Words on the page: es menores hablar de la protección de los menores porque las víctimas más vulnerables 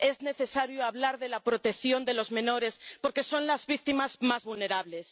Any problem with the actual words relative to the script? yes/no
yes